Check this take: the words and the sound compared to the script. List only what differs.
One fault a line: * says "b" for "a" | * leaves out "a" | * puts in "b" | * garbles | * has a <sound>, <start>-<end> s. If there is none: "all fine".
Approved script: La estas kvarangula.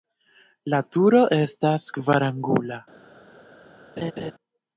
* puts in "turo"
* has a laugh, 4.0-4.3 s